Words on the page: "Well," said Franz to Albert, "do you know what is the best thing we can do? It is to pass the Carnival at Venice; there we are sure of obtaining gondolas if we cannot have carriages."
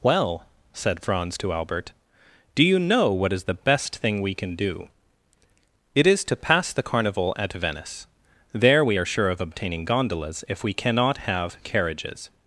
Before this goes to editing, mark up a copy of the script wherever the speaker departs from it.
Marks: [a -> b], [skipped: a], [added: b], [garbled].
"Well," said Franz to Albert, "do you know what is the best thing we can do? It is to pass the Carnival at Venice; there we are sure of obtaining gondolas if we cannot have carriages."